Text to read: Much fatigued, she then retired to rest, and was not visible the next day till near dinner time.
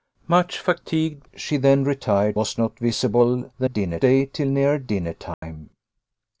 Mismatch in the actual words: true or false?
true